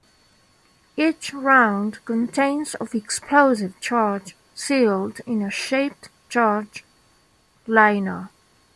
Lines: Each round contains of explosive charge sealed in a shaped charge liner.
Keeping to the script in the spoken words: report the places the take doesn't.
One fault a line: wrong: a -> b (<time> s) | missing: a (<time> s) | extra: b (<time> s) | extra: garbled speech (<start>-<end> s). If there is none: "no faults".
no faults